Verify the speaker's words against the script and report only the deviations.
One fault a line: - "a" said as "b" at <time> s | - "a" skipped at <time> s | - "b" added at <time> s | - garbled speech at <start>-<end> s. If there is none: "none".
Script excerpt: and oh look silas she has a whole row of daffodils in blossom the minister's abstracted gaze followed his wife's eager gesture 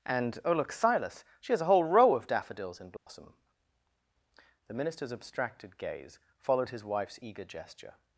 none